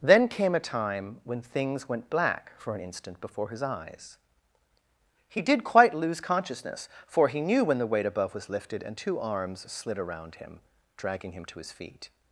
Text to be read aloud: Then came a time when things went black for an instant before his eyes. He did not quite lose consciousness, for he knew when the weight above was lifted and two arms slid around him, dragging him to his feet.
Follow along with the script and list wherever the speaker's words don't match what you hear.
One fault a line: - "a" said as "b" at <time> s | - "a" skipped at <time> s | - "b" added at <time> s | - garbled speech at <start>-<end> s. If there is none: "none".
- "not" skipped at 5.6 s